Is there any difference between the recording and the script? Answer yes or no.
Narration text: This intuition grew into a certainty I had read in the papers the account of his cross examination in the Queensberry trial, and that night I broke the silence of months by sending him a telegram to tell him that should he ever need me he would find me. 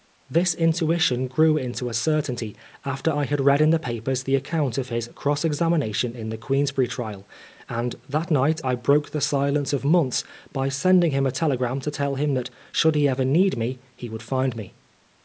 yes